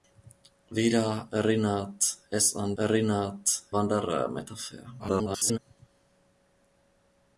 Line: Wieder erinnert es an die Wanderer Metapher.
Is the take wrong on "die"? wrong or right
wrong